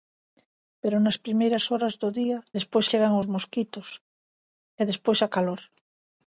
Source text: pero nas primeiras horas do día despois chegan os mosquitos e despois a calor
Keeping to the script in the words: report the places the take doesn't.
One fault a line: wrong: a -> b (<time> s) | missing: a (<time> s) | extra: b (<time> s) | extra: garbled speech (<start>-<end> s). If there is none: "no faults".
no faults